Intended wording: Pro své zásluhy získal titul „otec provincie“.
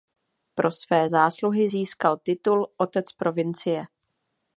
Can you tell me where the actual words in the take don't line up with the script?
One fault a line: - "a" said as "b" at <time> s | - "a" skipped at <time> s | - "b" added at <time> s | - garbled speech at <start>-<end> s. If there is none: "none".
none